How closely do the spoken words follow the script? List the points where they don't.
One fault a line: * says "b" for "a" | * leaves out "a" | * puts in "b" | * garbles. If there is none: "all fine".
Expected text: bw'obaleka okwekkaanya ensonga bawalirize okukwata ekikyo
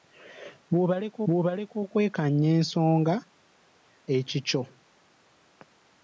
* puts in "bw'obaleka"
* leaves out "bawalirize okukwata"